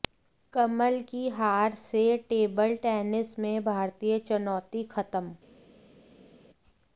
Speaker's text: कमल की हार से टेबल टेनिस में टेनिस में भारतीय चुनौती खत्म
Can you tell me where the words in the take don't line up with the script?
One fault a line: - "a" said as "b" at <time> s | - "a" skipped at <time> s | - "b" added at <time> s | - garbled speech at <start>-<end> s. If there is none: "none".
- "टेनिस में" skipped at 3.6 s